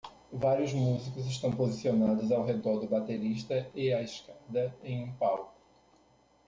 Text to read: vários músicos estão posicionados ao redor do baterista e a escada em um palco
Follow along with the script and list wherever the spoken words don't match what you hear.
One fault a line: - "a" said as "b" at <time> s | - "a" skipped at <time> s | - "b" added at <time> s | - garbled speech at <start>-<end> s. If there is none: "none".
none